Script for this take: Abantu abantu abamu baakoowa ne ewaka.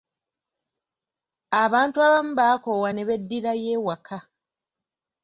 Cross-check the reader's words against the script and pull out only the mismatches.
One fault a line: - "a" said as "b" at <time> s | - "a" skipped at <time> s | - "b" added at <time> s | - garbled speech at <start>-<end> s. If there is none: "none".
- "abantu" skipped at 2.0 s
- "beddirayo" added at 3.1 s